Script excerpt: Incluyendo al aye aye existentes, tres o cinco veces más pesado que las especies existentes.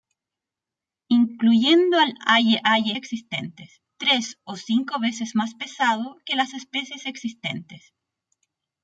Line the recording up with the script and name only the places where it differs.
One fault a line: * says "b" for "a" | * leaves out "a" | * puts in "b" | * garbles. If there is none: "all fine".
all fine